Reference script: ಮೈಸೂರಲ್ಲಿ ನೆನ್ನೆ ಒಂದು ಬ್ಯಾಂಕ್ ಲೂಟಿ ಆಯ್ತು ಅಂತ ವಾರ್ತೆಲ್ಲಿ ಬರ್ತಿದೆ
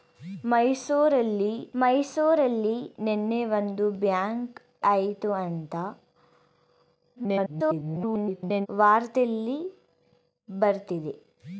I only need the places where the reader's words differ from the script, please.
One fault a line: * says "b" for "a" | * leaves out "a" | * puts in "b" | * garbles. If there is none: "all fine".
* puts in "ಮೈಸೂರಲ್ಲಿ"
* leaves out "ಲೂಟಿ"
* garbles